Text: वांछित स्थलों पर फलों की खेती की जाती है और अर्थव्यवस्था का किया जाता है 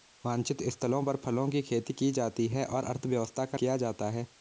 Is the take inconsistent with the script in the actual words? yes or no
no